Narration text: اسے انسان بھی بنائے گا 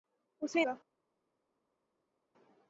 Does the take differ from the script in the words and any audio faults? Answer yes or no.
yes